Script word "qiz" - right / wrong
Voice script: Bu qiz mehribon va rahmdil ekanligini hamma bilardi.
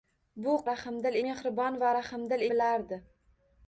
wrong